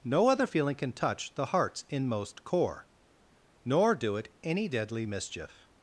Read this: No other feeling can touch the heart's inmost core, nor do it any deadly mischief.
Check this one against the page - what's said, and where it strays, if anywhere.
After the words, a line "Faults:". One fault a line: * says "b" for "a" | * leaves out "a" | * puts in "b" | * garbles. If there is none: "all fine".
No other feeling can touch the heart's inmost core, nor do it any deadly mischief.
Faults:
all fine